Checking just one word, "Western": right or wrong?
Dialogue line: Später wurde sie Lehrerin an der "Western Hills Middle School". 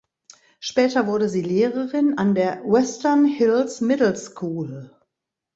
right